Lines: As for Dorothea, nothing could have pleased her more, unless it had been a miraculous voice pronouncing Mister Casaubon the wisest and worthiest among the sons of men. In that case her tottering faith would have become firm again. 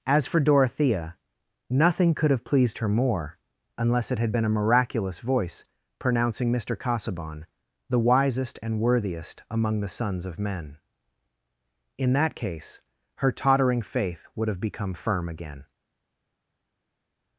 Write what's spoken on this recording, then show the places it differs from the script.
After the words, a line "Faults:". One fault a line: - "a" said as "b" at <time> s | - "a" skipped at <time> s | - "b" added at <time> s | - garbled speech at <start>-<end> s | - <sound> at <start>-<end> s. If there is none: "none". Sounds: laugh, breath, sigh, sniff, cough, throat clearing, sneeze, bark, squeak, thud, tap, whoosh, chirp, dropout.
As for Dorothea, nothing could have pleased her more, unless it had been a miraculous voice pronouncing Mister Casaubon the wisest and worthiest among the sons of men. In that case her tottering faith would have become firm again.
Faults:
none